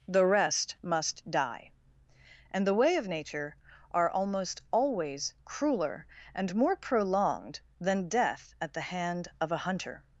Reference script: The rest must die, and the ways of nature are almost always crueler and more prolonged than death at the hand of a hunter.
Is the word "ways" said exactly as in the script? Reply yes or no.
no